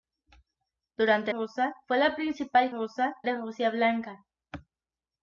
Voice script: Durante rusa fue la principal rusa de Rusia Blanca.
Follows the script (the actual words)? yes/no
yes